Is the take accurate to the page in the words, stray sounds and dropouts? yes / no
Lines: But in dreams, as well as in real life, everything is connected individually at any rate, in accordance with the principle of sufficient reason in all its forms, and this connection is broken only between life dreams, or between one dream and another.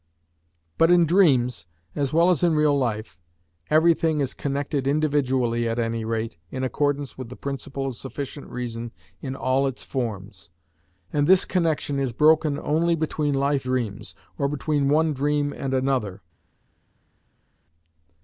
yes